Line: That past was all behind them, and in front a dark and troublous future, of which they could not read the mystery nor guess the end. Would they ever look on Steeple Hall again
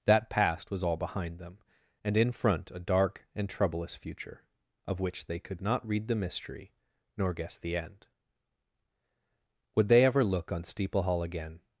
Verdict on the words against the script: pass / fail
pass